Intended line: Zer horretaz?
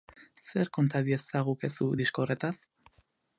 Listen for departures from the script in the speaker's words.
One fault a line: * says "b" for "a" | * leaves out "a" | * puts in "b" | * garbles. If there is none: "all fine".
* puts in "konta diezagukezu disko"